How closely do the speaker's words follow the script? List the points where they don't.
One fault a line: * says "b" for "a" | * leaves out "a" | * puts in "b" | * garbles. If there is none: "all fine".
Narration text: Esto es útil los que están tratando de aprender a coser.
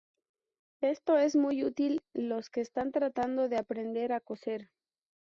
* puts in "muy"